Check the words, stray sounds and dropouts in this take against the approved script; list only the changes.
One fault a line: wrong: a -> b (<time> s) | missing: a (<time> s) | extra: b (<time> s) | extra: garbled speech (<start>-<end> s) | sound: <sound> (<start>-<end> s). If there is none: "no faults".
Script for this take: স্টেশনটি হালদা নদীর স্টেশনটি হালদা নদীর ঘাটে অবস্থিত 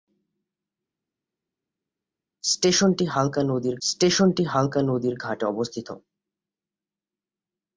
no faults